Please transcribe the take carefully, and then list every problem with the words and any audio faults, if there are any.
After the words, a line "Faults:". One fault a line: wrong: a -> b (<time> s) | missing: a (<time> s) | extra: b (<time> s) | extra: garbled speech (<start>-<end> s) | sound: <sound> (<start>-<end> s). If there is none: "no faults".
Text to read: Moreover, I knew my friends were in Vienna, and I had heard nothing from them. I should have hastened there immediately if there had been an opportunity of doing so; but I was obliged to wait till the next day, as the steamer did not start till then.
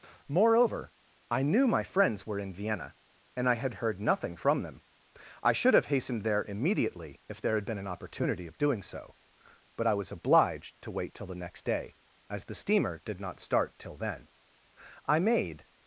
Moreover, I knew my friends were in Vienna, and I had heard nothing from them. I should have hastened there immediately if there had been an opportunity of doing so; but I was obliged to wait till the next day, as the steamer did not start till then. I made
Faults:
extra: I made (15.1 s)